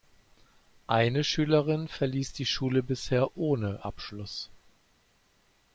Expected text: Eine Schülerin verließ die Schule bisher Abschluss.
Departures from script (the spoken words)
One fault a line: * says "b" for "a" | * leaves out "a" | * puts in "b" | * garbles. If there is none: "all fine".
* puts in "ohne"